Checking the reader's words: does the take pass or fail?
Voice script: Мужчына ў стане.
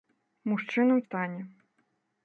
pass